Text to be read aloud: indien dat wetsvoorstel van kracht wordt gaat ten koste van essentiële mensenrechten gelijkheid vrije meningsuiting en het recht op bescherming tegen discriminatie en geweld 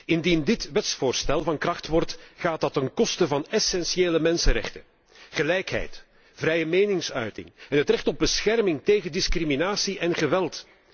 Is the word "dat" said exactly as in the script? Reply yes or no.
no